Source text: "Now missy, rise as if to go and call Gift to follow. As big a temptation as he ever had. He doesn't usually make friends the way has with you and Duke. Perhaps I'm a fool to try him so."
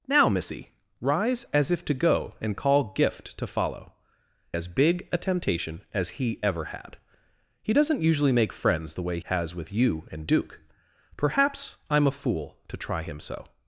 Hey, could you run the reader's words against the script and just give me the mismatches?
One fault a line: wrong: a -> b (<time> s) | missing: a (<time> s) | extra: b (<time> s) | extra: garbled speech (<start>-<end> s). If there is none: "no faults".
no faults